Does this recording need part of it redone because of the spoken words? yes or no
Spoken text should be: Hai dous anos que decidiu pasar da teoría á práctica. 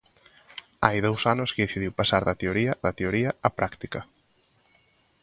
yes